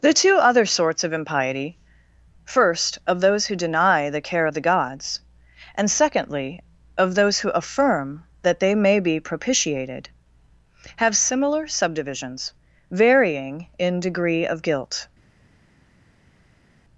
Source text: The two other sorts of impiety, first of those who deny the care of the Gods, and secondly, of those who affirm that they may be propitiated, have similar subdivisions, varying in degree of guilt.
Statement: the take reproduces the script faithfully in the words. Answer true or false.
true